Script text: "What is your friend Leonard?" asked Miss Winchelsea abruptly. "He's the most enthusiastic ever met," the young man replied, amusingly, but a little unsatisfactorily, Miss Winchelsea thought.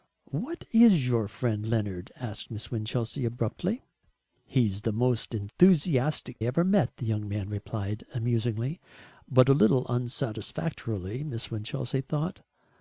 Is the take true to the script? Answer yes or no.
yes